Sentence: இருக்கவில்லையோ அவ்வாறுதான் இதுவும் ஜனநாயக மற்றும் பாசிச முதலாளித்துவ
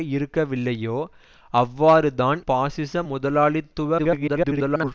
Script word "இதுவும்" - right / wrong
wrong